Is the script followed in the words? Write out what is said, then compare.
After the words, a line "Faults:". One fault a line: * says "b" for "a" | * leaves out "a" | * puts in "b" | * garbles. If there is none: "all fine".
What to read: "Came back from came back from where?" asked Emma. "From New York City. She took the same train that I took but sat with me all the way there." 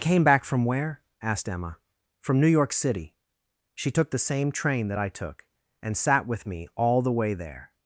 "Came back from where?" asked Emma. "From New York City. She took the same train that I took and sat with me all the way there."
Faults:
* leaves out "came back from"
* says "and" for "but"